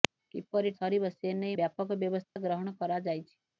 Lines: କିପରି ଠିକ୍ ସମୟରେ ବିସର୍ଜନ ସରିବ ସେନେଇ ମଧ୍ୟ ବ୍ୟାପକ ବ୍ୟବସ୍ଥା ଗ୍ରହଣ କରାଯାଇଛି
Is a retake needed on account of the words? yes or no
yes